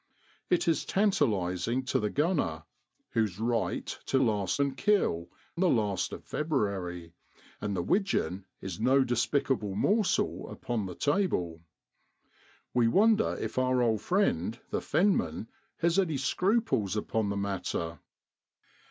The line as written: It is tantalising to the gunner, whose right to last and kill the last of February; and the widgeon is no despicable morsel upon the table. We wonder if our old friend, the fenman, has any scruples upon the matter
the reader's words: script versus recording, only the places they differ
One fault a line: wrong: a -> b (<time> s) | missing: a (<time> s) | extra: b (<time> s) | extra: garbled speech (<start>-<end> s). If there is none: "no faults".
no faults